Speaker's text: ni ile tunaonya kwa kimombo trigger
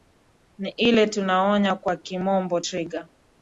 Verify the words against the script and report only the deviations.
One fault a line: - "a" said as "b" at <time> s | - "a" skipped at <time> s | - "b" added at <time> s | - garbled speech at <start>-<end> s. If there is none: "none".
none